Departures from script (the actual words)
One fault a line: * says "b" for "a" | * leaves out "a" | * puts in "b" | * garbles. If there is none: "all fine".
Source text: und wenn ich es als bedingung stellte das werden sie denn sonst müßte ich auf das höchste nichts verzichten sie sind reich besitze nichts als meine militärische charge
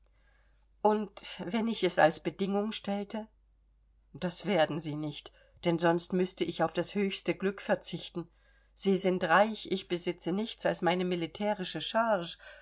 * puts in "nicht"
* says "glück" for "nichts"
* puts in "ich"